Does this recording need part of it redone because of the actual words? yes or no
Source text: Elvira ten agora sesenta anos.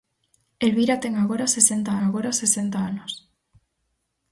yes